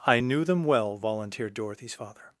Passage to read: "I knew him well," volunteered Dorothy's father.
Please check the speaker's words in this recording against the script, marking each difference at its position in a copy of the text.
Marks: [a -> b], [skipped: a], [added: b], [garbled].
"I knew [him -> them] well," volunteered Dorothy's father.